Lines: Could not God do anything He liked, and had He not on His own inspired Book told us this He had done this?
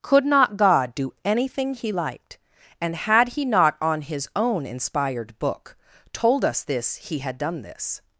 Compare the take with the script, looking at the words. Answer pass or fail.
pass